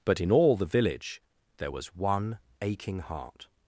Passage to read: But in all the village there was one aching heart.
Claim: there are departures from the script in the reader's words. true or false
false